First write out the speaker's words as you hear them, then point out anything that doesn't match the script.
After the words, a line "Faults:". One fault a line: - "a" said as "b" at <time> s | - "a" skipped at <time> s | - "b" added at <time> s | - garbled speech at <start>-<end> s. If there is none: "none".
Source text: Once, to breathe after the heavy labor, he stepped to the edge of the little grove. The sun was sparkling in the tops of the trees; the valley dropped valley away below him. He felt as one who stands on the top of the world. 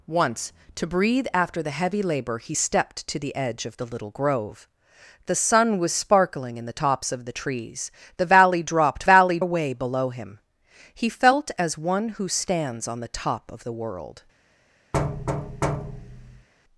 Once, to breathe after the heavy labor, he stepped to the edge of the little grove. The sun was sparkling in the tops of the trees; the valley dropped valley away below him. He felt as one who stands on the top of the world.
Faults:
none